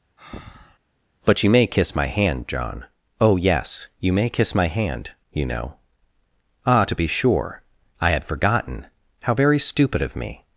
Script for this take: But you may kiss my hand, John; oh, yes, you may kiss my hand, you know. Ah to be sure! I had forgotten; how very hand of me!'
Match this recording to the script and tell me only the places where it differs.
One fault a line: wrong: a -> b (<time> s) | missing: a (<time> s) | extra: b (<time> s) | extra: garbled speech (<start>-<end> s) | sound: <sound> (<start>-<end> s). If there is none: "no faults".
sound: breath (0.2-0.8 s)
wrong: hand -> stupid (9.6 s)